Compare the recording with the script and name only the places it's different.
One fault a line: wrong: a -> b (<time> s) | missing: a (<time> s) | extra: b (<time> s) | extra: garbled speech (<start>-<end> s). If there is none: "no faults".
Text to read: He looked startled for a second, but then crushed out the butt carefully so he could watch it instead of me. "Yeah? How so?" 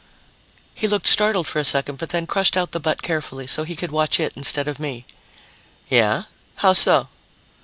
no faults